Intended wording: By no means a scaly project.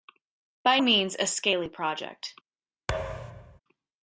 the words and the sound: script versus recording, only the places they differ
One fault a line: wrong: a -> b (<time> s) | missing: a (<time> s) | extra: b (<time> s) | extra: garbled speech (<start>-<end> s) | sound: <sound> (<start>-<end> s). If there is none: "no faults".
missing: no (0.8 s)
sound: thud (2.9-3.6 s)